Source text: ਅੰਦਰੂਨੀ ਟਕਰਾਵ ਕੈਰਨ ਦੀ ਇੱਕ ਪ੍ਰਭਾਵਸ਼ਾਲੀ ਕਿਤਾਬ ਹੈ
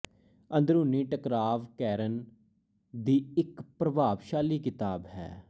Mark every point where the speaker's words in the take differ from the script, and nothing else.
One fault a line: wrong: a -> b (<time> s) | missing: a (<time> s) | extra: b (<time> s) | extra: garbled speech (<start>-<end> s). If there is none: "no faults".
no faults